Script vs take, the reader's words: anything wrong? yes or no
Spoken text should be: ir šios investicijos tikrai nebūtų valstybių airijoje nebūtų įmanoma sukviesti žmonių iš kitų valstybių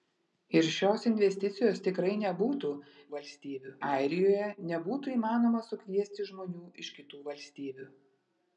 no